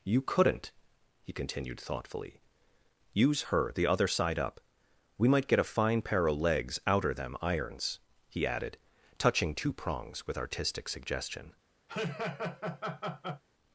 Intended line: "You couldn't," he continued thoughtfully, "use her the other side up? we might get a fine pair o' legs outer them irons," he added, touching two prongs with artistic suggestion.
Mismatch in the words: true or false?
false